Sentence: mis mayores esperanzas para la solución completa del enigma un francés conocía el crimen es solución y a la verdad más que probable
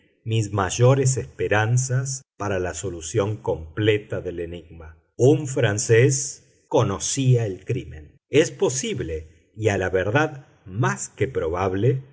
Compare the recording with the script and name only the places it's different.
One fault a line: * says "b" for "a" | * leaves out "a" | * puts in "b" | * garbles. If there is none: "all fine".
* says "posible" for "solución"